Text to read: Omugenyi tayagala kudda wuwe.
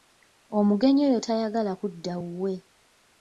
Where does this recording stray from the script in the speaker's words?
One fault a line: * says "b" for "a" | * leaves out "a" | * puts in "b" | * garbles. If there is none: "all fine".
* puts in "oyo"